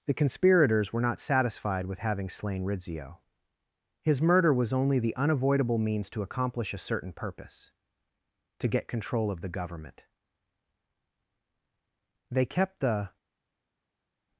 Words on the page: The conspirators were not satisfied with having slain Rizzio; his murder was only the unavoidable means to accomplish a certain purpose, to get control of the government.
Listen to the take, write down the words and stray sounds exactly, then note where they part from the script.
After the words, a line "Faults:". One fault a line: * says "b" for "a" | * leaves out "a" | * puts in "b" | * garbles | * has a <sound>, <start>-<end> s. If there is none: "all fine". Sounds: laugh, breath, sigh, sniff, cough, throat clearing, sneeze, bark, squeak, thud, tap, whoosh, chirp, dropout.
The conspirators were not satisfied with having slain Rizzio; his murder was only the unavoidable means to accomplish a certain purpose, to get control of the government. They kept the
Faults:
* puts in "They kept the"